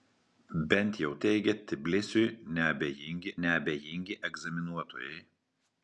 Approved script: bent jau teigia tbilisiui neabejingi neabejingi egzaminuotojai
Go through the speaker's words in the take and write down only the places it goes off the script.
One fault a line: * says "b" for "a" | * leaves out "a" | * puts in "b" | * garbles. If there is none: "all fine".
all fine